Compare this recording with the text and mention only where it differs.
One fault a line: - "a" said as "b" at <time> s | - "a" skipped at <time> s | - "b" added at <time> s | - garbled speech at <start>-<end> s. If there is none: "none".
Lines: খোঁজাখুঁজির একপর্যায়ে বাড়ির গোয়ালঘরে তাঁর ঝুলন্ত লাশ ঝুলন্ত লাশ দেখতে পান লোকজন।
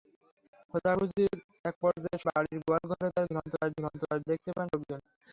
none